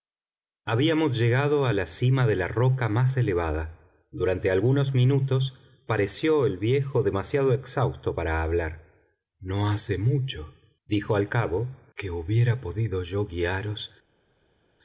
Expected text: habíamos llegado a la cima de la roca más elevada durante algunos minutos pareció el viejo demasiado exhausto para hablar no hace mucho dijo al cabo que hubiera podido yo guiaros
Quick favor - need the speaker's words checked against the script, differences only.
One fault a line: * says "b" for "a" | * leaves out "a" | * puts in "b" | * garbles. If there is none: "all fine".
all fine